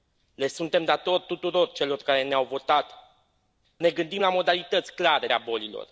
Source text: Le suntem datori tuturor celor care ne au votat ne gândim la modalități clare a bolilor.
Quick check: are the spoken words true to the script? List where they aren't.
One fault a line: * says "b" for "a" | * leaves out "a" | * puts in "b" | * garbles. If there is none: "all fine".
all fine